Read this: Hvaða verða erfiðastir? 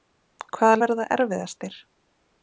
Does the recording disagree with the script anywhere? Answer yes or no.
no